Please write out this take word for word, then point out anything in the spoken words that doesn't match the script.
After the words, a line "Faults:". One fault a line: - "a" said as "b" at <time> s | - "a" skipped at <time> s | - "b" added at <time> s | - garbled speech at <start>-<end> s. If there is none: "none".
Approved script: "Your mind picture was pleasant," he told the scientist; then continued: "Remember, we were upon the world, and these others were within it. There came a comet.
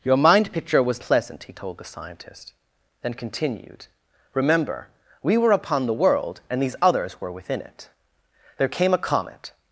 "Your mind picture was pleasant," he told the scientist; then continued: "Remember, we were upon the world, and these others were within it. There came a comet.
Faults:
none